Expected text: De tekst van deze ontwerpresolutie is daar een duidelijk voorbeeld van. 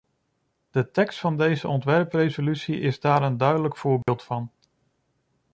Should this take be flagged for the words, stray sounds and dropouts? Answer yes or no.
yes